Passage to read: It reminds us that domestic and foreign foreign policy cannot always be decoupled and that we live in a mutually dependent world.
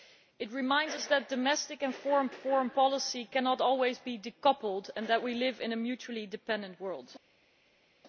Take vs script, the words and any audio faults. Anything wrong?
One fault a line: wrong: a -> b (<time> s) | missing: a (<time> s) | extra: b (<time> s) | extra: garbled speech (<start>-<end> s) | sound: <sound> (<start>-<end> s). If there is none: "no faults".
no faults